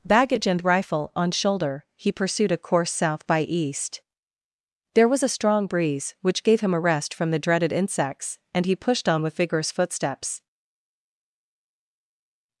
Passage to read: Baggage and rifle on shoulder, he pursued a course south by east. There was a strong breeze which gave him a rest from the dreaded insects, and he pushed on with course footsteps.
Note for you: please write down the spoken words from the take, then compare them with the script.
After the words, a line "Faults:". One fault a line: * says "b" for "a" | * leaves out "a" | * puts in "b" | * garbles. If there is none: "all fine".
Baggage and rifle on shoulder, he pursued a course south by east. There was a strong breeze which gave him a rest from the dreaded insects, and he pushed on with vigorous footsteps.
Faults:
* says "vigorous" for "course"